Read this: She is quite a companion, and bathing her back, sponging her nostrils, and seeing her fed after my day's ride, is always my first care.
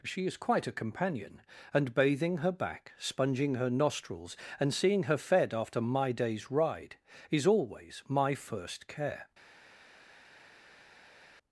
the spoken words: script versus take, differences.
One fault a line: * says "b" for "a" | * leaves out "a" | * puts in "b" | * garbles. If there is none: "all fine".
all fine